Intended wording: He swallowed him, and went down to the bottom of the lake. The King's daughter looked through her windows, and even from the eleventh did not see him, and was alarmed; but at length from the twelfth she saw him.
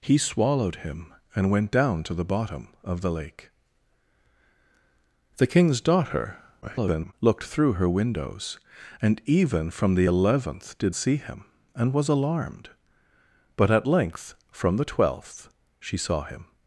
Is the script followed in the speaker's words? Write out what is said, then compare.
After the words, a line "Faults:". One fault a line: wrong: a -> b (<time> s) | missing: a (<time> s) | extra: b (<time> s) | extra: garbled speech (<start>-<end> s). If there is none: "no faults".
He swallowed him, and went down to the bottom of the lake. The King's daughter [garbled] looked through her windows, and even from the eleventh did see him, and was alarmed; but at length from the twelfth she saw him.
Faults:
extra: garbled speech (6.6-7.1 s)
missing: not (11.0 s)